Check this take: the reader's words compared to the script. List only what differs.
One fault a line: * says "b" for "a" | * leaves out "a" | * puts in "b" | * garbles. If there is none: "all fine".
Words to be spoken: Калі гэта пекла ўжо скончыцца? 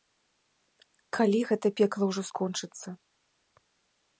all fine